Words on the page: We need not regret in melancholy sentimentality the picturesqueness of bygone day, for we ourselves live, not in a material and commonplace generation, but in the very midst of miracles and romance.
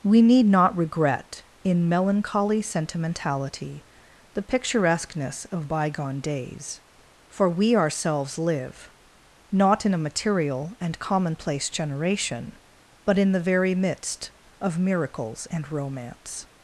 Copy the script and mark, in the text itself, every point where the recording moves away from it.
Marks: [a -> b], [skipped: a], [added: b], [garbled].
We need not regret in melancholy sentimentality the picturesqueness of bygone [day, -> days] for we ourselves live, not in a material and commonplace generation, but in the very midst of miracles and romance.